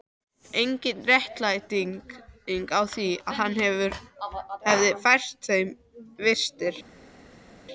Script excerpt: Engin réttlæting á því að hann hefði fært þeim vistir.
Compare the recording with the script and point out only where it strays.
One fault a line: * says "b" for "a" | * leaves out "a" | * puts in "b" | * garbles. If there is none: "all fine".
all fine